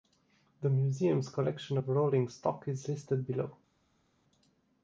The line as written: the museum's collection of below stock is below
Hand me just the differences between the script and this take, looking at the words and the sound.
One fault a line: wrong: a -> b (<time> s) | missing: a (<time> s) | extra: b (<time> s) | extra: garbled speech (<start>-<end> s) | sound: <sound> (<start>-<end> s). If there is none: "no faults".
wrong: below -> rolling (1.9 s)
extra: listed (2.9 s)